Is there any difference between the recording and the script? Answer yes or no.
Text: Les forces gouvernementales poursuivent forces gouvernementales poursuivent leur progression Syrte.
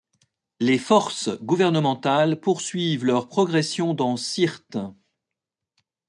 yes